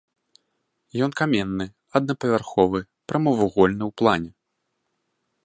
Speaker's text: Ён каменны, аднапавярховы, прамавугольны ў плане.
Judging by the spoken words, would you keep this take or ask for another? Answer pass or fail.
pass